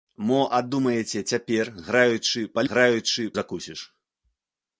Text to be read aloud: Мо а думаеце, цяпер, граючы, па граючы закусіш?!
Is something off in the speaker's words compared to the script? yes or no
no